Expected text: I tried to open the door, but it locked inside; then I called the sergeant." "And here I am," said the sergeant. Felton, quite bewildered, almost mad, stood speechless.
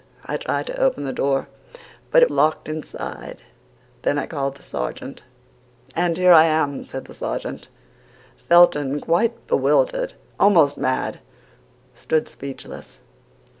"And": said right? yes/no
yes